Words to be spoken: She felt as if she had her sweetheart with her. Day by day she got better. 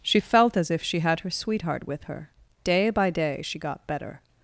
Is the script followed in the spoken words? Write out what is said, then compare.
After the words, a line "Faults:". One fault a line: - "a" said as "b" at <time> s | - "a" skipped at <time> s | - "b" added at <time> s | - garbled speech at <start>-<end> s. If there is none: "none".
She felt as if she had her sweetheart with her. Day by day she got better.
Faults:
none